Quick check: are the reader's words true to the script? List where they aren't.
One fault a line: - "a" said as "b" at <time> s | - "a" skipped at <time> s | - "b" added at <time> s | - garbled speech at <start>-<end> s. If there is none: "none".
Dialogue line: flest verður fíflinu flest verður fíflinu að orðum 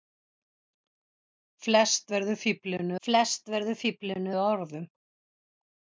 none